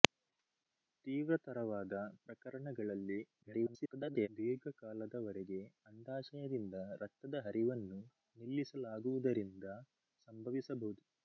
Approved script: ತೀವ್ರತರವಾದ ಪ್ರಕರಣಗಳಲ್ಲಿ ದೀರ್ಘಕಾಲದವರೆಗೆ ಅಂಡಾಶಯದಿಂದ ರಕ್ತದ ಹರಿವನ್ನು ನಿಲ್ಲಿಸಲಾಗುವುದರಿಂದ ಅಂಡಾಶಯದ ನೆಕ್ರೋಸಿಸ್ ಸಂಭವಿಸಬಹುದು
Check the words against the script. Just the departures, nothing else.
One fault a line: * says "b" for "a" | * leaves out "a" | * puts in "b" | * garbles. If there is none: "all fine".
* garbles
* leaves out "ಅಂಡಾಶಯದ ನೆಕ್ರೋಸಿಸ್"